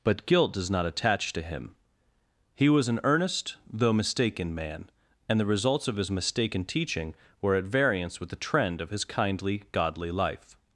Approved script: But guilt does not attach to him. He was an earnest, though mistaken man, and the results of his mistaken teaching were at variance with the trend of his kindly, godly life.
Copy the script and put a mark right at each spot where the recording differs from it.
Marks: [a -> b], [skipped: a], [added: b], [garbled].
But guilt does not attach to him. He was an earnest, though mistaken man, and the results of his mistaken teaching were at variance with the trend of his kindly, godly life.